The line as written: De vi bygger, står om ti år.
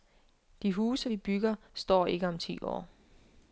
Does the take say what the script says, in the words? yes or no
no